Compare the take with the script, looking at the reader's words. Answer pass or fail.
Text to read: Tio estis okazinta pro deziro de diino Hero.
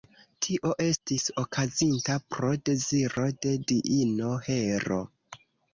pass